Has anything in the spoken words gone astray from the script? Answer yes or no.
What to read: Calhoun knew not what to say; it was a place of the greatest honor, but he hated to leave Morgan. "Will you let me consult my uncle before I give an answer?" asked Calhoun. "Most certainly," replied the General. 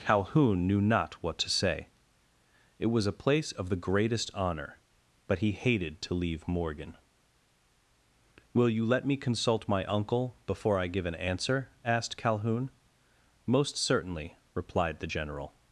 no